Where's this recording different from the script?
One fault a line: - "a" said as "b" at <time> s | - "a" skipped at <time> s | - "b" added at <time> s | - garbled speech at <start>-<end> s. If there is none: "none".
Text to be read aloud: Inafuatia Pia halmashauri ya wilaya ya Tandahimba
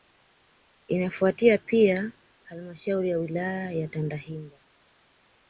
none